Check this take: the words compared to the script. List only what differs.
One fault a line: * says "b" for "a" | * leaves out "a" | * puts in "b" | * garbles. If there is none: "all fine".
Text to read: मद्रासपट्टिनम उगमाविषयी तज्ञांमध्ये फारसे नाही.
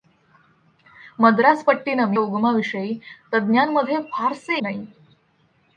all fine